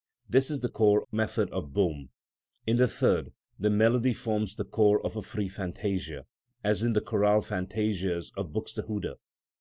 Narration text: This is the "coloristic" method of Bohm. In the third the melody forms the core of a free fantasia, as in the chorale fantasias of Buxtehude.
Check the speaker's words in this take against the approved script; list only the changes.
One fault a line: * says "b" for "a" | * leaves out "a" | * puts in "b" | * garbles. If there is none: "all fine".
* says "core" for "coloristic"